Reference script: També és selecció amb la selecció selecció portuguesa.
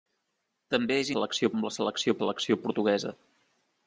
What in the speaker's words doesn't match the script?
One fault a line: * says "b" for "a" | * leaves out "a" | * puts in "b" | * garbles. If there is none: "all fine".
all fine